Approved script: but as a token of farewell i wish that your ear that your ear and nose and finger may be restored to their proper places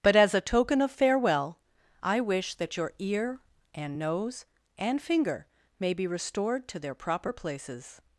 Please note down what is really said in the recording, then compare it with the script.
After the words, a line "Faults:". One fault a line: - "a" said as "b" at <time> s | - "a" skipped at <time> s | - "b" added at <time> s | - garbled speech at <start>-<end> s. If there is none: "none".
but as a token of farewell i wish that your ear and nose and finger may be restored to their proper places
Faults:
- "that your ear" skipped at 3.4 s